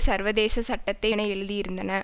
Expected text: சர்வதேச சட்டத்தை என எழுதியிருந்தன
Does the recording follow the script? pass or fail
pass